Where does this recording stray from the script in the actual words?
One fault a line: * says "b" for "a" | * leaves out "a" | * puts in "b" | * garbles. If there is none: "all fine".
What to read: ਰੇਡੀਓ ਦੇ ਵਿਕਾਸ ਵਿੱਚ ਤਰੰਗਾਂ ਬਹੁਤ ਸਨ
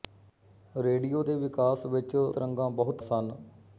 all fine